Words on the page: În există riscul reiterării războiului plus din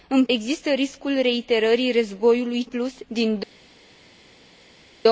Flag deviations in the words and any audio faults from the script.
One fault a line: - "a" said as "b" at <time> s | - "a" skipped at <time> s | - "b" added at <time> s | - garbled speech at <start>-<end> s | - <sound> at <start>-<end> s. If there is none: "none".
none